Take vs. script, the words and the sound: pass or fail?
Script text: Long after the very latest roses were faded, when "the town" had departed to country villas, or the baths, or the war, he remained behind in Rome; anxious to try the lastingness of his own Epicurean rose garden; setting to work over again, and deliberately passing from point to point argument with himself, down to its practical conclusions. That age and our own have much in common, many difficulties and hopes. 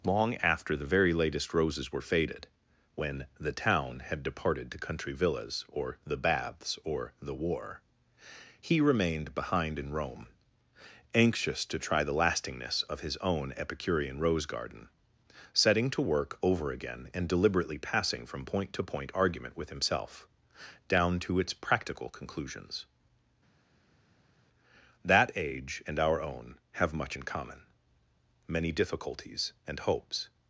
pass